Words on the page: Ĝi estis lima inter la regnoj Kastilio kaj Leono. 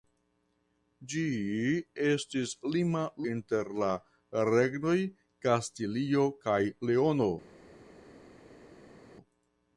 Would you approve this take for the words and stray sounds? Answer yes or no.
yes